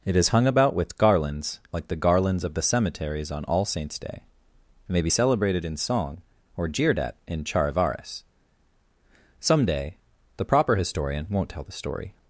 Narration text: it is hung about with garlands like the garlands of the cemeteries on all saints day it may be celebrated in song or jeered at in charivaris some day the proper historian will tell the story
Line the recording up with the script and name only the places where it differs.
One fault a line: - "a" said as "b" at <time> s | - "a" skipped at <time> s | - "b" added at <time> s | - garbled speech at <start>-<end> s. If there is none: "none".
- "will" said as "won't" at 11.3 s